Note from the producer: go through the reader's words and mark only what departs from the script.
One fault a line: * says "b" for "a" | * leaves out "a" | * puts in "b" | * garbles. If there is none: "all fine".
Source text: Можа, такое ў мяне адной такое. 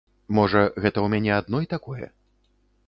* says "гэта" for "такое"